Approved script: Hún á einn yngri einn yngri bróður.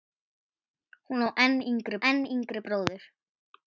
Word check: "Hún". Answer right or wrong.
right